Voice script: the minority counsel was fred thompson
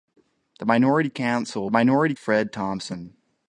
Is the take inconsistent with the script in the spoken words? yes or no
yes